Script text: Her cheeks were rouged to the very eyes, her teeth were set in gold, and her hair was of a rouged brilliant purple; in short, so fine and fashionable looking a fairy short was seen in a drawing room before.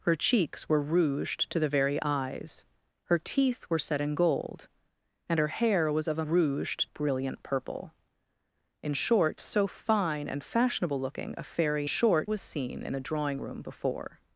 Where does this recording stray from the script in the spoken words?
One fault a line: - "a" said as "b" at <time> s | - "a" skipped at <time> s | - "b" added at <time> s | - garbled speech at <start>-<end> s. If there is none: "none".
none